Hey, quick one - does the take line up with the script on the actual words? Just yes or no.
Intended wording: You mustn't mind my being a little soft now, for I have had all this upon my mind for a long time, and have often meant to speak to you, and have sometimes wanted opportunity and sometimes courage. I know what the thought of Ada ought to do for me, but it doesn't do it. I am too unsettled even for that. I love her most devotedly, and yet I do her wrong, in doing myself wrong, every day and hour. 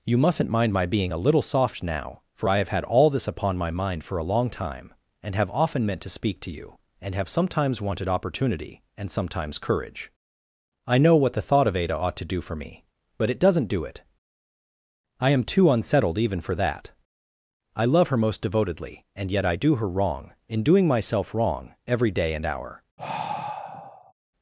yes